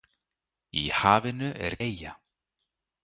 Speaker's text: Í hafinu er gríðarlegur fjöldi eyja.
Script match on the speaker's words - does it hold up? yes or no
no